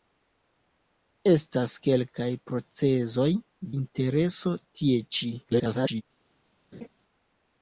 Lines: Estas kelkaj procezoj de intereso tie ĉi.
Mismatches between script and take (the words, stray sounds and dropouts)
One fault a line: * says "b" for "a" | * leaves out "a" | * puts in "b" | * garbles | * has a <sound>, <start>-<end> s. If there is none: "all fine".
* leaves out "de"
* garbles
* has a laugh, 6.7-6.9 s